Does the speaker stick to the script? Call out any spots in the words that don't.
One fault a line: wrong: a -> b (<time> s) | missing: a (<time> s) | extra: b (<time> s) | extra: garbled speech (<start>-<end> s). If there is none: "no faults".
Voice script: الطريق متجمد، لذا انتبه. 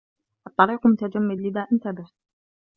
no faults